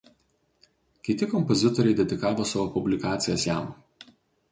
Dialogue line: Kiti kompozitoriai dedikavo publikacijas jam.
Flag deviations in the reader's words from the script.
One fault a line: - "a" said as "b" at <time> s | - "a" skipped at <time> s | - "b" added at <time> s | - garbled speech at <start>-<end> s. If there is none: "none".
- "savo" added at 2.5 s